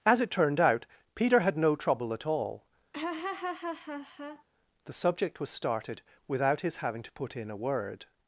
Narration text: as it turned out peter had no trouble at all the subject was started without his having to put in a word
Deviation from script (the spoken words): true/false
false